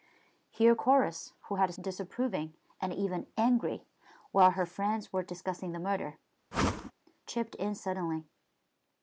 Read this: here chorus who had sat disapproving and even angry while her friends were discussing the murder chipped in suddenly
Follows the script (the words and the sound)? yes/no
no